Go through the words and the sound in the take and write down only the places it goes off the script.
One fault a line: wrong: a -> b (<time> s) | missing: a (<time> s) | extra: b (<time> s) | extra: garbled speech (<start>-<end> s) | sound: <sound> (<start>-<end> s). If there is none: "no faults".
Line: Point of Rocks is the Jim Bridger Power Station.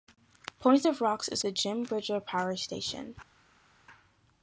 no faults